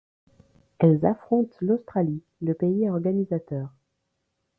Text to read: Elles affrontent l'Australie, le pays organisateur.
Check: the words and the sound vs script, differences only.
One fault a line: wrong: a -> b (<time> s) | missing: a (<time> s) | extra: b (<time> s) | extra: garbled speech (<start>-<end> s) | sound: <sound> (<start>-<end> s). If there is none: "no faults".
no faults